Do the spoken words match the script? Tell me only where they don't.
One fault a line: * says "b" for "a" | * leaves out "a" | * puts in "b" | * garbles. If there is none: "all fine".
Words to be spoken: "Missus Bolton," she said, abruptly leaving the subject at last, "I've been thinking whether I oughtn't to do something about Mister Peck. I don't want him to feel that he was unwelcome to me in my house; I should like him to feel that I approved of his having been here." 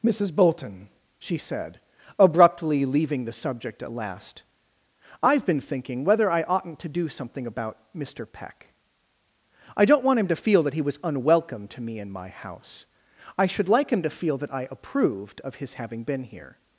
all fine